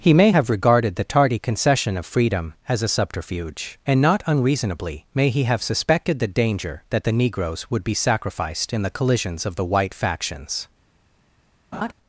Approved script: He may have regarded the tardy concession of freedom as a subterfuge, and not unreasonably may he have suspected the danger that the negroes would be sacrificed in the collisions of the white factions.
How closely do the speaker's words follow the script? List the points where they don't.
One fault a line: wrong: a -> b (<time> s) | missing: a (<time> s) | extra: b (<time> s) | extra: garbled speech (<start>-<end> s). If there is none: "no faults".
no faults